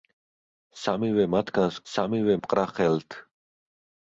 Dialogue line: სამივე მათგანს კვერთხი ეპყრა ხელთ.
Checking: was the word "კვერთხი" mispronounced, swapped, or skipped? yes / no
yes